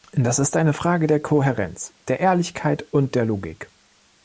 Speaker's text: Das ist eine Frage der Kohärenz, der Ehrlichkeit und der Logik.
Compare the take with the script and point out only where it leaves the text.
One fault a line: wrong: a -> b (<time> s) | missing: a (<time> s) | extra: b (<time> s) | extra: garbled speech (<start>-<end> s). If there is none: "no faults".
no faults